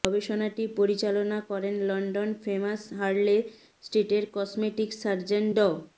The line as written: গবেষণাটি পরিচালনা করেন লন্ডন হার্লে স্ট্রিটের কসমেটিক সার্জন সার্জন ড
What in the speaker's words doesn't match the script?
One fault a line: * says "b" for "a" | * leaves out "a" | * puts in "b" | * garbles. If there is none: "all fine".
* puts in "ফেমাস"
* leaves out "সার্জন"